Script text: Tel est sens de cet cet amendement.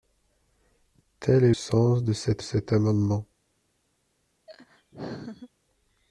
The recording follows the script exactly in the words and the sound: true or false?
false